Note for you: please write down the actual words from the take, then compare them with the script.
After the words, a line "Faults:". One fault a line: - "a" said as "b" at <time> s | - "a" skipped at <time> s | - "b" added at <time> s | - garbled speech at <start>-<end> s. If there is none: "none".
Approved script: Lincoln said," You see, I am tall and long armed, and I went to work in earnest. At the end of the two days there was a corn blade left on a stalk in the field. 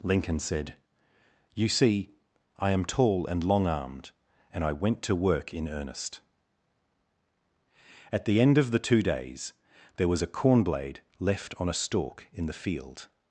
Lincoln said," You see, I am tall and long armed, and I went to work in earnest. At the end of the two days there was a corn blade left on a stalk in the field.
Faults:
none